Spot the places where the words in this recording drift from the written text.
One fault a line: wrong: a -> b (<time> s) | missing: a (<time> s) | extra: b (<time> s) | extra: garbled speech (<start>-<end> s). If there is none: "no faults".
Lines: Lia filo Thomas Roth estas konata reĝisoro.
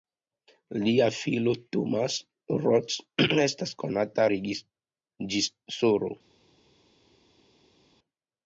no faults